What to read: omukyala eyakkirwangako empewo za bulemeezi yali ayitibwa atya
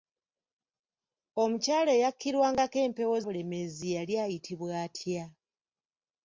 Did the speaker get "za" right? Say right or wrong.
wrong